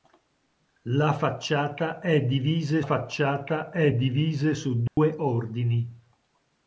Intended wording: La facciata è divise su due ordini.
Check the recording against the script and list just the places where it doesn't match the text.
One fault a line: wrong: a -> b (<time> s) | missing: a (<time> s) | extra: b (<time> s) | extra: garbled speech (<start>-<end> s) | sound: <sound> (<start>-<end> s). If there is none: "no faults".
extra: facciata è divise (2.8 s)
sound: dropout (4.9-5.0 s)